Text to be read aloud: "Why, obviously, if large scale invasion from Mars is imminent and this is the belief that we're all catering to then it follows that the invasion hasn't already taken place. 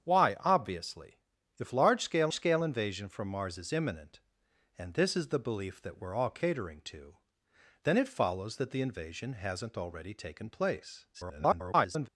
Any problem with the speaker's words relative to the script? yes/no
yes